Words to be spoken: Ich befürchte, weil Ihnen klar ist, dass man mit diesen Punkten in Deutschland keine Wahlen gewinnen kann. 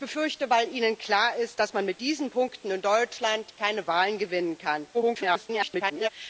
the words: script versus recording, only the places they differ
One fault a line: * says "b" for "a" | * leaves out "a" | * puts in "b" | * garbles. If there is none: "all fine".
* garbles